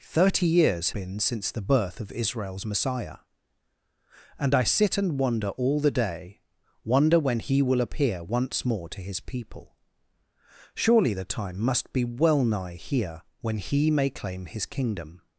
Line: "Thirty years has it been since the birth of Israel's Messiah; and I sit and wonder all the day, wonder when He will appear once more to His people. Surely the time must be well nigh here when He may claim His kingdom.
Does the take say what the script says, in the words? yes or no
no